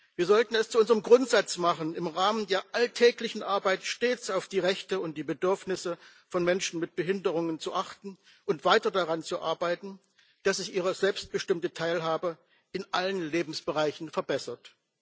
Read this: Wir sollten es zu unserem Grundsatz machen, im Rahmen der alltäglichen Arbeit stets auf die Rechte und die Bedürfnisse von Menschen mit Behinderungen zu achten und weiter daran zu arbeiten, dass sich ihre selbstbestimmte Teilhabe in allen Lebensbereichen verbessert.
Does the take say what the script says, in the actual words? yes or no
yes